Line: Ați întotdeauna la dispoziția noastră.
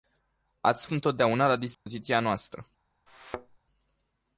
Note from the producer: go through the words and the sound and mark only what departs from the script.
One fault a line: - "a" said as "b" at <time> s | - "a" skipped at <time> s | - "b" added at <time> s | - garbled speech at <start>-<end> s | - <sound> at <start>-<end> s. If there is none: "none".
- dropout at 1.7-1.9 s
- thud at 3.1-3.6 s